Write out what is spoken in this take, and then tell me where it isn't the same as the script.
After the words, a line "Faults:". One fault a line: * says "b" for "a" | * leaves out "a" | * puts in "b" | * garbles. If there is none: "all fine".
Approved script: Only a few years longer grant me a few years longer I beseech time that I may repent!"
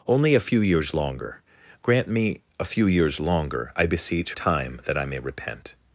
Only a few years longer grant me a few years longer I beseech time that I may repent!"
Faults:
all fine